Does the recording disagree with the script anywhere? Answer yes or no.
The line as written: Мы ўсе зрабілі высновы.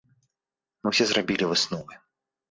no